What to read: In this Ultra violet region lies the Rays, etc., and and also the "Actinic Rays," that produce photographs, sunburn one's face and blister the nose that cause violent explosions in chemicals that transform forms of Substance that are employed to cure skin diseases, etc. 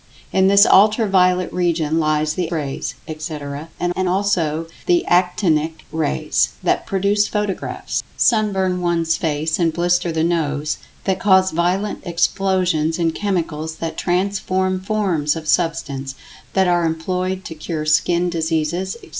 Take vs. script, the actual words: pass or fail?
pass